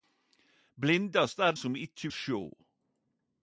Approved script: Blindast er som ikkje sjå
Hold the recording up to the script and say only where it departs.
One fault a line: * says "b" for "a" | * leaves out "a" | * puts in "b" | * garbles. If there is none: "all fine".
all fine